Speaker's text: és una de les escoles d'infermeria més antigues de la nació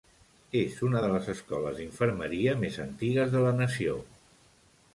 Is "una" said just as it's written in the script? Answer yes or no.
yes